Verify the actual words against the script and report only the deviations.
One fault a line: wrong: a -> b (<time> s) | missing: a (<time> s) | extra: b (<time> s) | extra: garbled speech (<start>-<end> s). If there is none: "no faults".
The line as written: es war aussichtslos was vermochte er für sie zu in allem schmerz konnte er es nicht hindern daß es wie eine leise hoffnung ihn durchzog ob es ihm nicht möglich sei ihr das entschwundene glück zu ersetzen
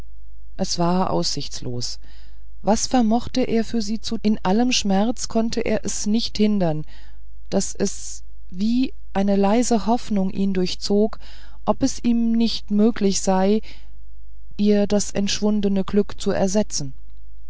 no faults